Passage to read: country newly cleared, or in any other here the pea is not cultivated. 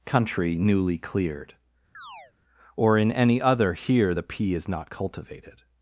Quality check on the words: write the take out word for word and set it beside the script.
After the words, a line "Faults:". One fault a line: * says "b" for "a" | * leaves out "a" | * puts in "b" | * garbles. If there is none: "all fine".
country newly cleared, or in any other here the pea is not cultivated.
Faults:
all fine